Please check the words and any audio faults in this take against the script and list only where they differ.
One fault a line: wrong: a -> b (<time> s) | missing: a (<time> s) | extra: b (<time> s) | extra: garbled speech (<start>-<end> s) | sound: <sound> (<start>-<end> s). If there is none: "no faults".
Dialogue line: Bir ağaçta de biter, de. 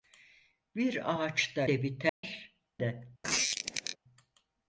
sound: dropout (2.1-2.2 s)
sound: squeak (3.2-4.0 s)